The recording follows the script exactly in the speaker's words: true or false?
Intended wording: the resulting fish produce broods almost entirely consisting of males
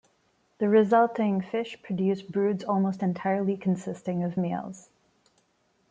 true